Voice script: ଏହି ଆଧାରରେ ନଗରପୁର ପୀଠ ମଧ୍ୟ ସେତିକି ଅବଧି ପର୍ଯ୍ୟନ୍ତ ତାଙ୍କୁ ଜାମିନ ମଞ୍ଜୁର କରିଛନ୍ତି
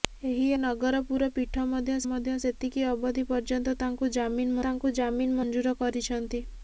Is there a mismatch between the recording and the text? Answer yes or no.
yes